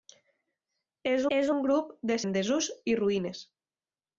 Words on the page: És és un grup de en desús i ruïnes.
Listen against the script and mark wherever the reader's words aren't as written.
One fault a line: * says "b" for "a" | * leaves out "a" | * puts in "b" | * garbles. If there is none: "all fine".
all fine